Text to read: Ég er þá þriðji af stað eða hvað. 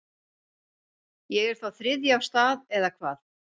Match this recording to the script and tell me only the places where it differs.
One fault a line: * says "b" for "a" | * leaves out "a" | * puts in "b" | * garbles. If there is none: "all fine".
all fine